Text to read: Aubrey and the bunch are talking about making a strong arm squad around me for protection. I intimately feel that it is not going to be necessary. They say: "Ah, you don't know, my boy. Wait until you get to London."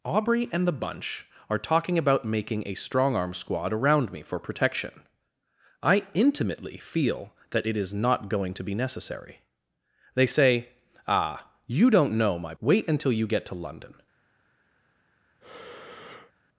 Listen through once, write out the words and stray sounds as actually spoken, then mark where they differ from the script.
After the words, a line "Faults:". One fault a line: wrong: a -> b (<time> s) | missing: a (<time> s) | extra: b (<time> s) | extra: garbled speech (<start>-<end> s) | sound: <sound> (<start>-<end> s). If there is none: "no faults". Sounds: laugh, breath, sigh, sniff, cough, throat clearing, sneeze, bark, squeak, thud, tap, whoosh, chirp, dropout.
Aubrey and the bunch are talking about making a strong arm squad around me for protection. I intimately feel that it is not going to be necessary. They say: "Ah, you don't know, my. Wait until you get to London."
Faults:
missing: boy (12.6 s)
sound: breath (15.4-16.3 s)